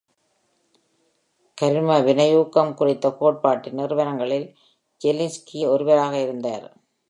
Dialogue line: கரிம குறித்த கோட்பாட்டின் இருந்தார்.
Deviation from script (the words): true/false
true